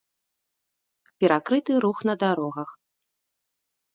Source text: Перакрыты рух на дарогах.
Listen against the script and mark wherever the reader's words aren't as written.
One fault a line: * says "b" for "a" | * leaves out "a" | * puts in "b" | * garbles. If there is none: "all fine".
all fine